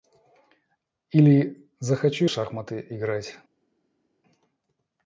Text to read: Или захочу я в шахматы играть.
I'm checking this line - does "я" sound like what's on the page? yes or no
no